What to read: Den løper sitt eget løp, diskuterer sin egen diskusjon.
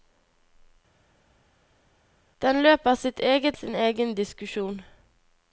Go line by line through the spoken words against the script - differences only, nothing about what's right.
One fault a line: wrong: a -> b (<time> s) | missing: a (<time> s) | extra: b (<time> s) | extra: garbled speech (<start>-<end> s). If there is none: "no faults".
missing: løp diskuterer (3.6 s)